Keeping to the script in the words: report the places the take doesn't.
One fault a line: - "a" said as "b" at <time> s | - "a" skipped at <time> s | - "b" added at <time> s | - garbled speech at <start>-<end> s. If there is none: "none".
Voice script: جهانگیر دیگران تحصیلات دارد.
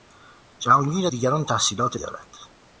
none